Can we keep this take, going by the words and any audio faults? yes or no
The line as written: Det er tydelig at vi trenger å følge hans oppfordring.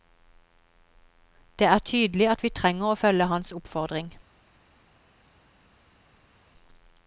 yes